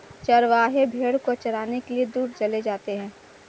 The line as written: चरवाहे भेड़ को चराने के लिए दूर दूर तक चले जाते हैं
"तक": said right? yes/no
no